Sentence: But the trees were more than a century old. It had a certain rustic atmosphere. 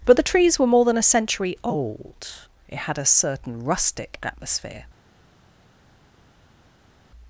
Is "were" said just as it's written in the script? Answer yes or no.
yes